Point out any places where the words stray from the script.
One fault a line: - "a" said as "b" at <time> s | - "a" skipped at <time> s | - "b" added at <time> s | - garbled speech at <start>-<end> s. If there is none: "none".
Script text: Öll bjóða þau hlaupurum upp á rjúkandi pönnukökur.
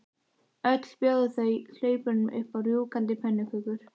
none